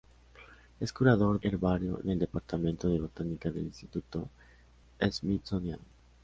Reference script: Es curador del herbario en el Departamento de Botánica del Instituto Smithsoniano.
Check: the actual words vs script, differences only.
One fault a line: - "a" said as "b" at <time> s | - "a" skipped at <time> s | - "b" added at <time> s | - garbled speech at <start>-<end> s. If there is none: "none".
- "del" skipped at 1.4 s